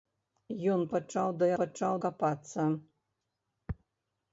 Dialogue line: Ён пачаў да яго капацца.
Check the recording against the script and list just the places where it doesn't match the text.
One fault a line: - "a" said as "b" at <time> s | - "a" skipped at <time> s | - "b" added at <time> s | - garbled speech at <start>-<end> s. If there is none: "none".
- "яго" said as "пачаў" at 1.6 s